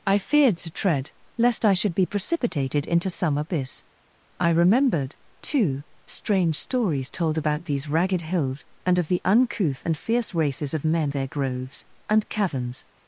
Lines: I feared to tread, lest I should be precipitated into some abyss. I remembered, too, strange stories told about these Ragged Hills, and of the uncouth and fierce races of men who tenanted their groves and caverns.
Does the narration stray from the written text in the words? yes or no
yes